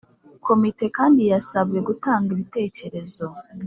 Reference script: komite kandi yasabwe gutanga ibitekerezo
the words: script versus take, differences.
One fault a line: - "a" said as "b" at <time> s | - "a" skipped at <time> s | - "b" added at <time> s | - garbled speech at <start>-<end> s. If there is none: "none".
none